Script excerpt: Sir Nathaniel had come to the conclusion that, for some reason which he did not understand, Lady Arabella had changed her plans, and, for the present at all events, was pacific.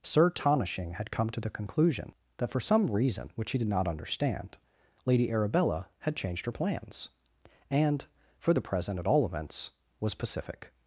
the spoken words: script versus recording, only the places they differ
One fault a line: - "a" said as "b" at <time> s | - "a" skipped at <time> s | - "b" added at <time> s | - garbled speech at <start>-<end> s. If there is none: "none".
- "Nathaniel" said as "Tonishing" at 0.3 s